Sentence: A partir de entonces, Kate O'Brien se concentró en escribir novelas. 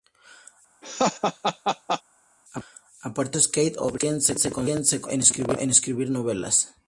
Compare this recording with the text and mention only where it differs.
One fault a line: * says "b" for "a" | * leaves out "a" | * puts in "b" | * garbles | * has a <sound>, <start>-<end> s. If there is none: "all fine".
* has a laugh, 0.8-2.0 s
* puts in "se"